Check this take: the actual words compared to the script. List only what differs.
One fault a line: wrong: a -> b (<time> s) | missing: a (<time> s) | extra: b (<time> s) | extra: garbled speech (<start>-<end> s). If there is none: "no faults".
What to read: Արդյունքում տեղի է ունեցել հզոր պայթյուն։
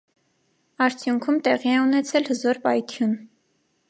no faults